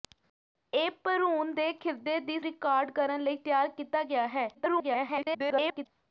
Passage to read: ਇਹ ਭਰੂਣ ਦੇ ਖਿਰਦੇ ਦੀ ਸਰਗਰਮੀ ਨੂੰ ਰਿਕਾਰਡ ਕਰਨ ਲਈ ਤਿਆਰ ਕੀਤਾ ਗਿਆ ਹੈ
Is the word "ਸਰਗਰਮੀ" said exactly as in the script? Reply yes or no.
no